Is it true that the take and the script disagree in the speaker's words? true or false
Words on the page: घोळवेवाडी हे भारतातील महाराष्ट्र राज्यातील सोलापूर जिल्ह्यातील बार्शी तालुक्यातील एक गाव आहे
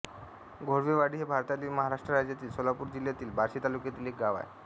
false